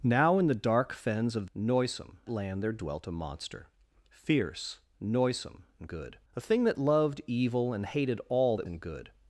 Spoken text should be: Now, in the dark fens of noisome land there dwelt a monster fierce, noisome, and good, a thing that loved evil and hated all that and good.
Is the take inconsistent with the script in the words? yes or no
no